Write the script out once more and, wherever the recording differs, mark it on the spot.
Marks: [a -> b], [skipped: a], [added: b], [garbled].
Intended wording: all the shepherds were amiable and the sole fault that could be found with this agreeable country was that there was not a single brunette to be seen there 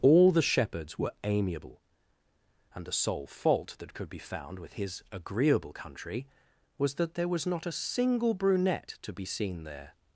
all the shepherds were amiable and the sole fault that could be found with [this -> his] agreeable country was that there was not a single brunette to be seen there